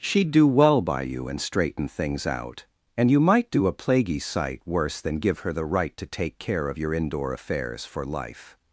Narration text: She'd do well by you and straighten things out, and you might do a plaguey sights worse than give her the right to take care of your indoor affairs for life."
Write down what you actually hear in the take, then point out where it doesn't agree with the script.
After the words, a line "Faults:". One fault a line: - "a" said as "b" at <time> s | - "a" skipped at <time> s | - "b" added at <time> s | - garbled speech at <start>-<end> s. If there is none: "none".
She'd do well by you and straighten things out, and you might do a plaguey sight worse than give her the right to take care of your indoor affairs for life."
Faults:
- "sights" said as "sight" at 4.2 s